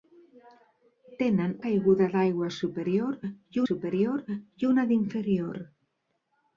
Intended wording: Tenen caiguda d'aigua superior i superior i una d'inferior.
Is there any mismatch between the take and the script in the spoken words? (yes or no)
no